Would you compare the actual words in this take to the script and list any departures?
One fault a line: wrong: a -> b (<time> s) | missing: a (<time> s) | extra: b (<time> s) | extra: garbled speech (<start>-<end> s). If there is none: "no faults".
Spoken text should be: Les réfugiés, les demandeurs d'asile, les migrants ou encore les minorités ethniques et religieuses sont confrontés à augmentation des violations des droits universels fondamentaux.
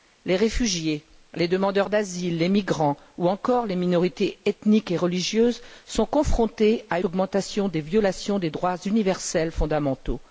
no faults